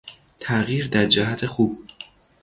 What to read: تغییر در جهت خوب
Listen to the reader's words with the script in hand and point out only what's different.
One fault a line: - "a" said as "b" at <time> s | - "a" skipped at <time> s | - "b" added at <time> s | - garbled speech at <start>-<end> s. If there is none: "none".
none